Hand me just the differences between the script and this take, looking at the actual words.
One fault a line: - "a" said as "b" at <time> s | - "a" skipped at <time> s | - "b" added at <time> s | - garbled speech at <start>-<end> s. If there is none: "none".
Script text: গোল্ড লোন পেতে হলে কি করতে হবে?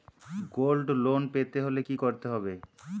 none